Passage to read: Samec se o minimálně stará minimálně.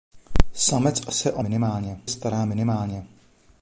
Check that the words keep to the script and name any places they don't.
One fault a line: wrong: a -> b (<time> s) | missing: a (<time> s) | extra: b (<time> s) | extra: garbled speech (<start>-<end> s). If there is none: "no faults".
no faults